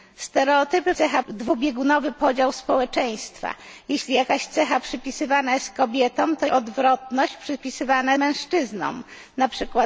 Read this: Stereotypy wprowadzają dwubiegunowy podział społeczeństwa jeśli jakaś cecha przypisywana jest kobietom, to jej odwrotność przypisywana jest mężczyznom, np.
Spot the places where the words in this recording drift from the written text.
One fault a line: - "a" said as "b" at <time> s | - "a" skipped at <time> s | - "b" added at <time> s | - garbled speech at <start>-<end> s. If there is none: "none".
- "wprowadzają" said as "cecha" at 0.9 s
- "jej" skipped at 6.5 s
- "jest" skipped at 8.1 s